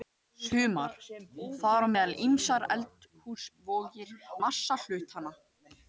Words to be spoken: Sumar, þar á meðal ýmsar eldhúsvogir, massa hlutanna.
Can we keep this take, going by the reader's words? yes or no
yes